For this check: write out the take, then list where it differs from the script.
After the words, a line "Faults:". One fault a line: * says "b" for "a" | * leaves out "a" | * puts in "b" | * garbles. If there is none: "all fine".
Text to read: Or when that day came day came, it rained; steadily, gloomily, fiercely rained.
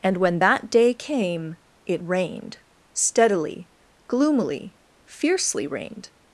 And when that day came, it rained; steadily, gloomily, fiercely rained.
Faults:
* says "And" for "Or"
* leaves out "day came"